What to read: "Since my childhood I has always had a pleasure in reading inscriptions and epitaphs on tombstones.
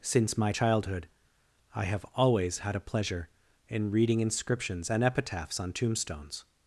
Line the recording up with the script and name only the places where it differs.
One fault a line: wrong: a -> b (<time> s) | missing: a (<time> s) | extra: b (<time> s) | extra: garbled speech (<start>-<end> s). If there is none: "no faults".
wrong: has -> have (1.9 s)